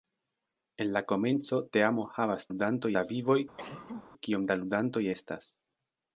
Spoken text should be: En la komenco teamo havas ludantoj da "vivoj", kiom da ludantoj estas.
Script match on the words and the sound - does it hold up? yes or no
no